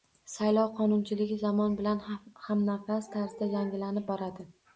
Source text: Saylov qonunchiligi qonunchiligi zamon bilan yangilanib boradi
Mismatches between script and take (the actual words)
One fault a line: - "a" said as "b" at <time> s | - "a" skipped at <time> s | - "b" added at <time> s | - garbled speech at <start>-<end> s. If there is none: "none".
- "qonunchiligi" skipped at 1.4 s
- "hamnafas tarzda" added at 2.5 s